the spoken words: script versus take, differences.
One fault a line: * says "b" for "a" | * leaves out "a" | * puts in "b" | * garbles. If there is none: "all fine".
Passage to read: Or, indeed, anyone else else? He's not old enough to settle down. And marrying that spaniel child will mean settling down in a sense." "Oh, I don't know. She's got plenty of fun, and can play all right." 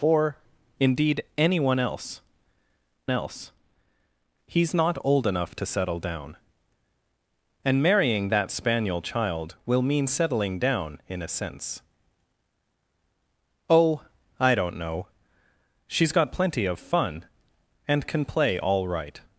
all fine